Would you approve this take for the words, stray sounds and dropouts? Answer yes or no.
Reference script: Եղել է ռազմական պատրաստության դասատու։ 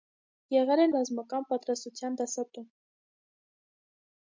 yes